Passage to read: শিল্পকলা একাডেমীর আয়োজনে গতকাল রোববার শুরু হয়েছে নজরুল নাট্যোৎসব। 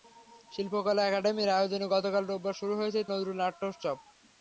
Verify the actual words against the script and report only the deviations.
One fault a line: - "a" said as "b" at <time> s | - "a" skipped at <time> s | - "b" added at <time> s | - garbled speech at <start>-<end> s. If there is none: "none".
none